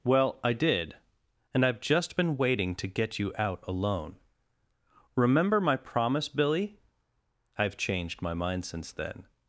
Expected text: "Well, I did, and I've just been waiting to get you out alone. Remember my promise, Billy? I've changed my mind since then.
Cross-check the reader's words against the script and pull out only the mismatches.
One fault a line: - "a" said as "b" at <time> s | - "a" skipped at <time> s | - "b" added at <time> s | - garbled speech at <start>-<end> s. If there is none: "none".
none